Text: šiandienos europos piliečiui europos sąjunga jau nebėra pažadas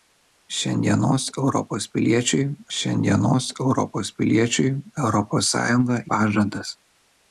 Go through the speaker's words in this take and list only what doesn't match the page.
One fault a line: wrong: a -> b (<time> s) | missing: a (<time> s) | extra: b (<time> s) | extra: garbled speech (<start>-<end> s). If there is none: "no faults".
extra: šiandienos (2.8 s)
wrong: sąjunga jau nebėra -> piliečiui europos sąjunga (4.2 s)